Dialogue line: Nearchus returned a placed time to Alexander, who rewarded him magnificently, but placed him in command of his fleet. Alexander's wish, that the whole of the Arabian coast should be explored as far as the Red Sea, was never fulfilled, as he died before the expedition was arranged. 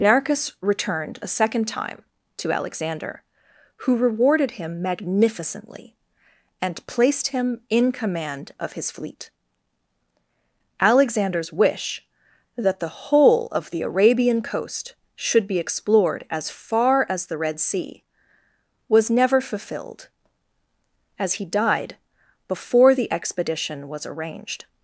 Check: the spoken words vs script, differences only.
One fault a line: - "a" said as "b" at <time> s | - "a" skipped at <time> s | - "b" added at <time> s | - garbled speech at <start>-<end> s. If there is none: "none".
- "placed" said as "second" at 1.3 s
- "but" said as "and" at 6.6 s